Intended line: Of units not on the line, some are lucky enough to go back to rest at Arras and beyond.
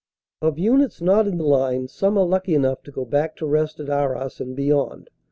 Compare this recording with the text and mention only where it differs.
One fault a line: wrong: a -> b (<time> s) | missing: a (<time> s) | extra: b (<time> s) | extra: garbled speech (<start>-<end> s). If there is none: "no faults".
wrong: on -> in (1.3 s)